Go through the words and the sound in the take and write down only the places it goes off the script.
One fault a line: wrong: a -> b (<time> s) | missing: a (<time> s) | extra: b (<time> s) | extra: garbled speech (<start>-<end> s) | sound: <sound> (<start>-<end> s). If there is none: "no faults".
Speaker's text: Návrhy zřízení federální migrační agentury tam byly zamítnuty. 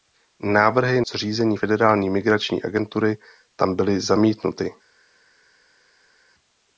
no faults